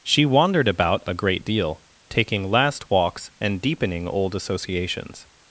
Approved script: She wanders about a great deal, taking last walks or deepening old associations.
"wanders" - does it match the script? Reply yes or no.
no